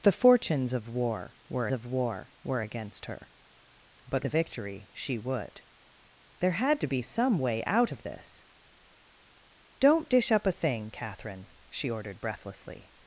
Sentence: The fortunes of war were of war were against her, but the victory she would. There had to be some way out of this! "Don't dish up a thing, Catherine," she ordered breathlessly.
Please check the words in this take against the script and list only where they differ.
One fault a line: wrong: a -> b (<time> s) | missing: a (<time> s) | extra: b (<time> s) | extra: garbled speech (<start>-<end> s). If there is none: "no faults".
no faults